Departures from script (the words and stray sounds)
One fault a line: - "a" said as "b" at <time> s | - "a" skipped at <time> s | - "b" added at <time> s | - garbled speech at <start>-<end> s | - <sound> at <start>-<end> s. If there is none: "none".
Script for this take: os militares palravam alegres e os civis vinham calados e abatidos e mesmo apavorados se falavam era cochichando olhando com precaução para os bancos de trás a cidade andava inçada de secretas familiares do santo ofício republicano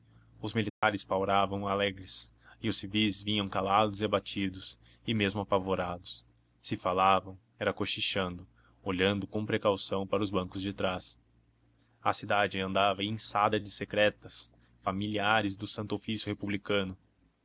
- dropout at 0.7-0.8 s